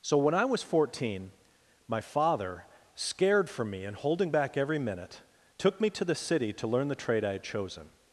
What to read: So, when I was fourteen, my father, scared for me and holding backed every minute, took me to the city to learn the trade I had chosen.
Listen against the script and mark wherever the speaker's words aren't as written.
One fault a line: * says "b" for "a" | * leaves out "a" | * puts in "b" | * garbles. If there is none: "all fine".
* says "back" for "backed"